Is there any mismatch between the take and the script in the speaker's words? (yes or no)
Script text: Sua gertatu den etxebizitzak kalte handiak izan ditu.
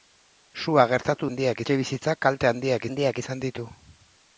yes